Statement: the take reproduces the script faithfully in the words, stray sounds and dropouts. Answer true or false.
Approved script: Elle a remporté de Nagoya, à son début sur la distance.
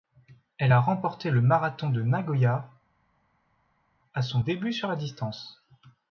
false